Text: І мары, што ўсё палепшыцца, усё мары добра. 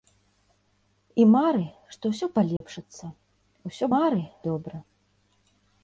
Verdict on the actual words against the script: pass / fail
pass